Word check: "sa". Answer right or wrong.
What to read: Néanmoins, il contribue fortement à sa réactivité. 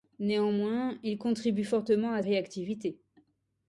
wrong